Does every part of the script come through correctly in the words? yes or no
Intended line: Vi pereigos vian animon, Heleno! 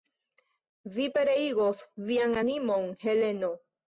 yes